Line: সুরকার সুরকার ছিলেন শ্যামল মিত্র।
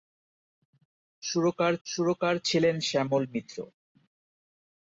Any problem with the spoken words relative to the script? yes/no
no